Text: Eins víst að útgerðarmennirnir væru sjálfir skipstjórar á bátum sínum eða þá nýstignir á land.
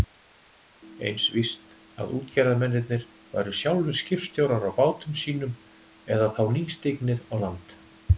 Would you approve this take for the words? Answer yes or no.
yes